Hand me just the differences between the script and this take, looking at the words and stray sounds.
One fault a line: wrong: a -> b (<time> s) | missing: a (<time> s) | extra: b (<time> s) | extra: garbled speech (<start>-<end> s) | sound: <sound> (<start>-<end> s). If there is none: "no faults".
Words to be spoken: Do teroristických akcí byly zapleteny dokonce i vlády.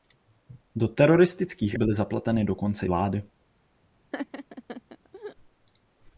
missing: akcí (1.8 s)
missing: i (2.9 s)
sound: laugh (4.1-5.4 s)